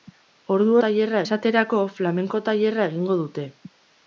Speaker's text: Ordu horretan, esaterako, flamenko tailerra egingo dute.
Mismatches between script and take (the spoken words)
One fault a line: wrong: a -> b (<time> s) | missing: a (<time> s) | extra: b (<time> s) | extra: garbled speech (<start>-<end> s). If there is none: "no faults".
wrong: horretan -> tailerra (0.9 s)